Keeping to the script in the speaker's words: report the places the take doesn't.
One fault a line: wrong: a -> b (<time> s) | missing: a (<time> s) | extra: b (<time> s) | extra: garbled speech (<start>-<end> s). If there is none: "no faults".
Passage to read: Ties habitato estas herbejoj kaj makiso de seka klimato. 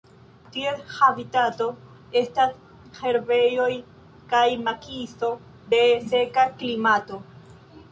no faults